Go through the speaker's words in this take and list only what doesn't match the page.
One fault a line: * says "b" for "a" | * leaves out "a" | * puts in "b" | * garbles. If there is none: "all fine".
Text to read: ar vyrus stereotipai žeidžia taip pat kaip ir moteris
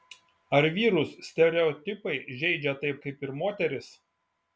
* leaves out "pat"